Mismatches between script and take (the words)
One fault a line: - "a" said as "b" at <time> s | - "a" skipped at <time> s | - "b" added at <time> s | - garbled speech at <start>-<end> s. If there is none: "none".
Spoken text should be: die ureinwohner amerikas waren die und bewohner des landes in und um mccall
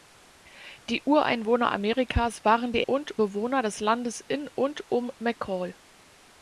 none